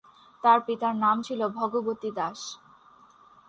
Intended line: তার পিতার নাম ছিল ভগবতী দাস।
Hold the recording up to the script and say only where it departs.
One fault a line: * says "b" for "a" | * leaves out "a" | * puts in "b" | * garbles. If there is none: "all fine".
all fine